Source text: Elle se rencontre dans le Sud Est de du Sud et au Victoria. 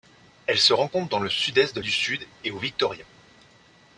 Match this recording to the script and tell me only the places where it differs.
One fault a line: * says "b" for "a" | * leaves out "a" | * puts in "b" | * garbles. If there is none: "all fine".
all fine